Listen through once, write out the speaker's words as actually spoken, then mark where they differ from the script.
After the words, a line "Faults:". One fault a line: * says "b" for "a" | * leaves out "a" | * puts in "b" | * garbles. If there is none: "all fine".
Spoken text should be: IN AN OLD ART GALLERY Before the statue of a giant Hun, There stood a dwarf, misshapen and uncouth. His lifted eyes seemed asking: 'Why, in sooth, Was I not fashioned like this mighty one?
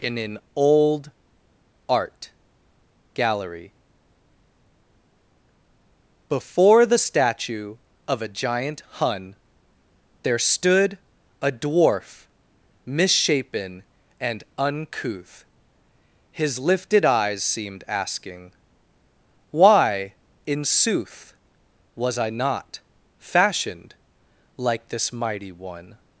IN AN OLD ART GALLERY Before the statue of a giant Hun, There stood a dwarf, misshapen and uncouth. His lifted eyes seemed asking: 'Why, in sooth, Was I not fashioned like this mighty one?
Faults:
all fine